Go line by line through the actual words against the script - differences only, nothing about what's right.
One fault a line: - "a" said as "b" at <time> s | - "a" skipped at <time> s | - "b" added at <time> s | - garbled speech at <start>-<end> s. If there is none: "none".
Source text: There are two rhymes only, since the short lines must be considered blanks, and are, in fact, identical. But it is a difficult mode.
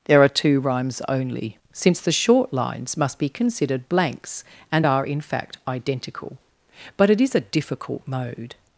none